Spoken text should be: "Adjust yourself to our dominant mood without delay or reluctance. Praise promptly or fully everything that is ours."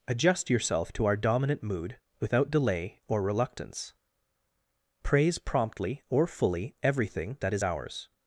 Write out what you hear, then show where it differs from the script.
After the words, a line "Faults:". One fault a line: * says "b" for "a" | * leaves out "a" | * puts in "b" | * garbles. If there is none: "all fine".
"Adjust yourself to our dominant mood without delay or reluctance. Praise promptly or fully everything that is ours."
Faults:
all fine